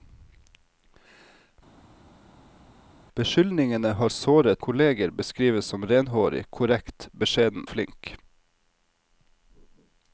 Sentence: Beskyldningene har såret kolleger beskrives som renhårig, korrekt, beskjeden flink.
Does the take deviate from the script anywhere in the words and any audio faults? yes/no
no